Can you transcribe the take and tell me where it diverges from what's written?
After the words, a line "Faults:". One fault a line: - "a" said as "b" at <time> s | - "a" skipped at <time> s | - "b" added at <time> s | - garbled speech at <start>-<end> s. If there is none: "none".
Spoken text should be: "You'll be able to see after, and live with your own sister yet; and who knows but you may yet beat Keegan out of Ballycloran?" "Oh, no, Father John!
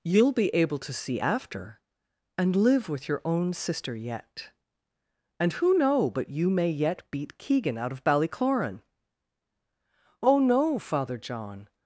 "You'll be able to see after, and live with your own sister yet; and who know but you may yet beat Keegan out of Ballycloran?" "Oh, no, Father John!
Faults:
- "knows" said as "know" at 5.8 s